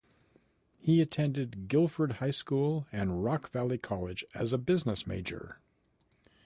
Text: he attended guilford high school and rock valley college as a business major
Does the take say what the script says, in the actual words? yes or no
yes